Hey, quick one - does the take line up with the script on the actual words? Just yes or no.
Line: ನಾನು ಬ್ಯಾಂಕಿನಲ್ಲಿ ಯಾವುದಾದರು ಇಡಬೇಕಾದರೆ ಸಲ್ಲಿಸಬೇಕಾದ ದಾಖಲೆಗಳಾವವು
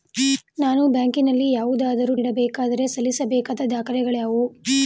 yes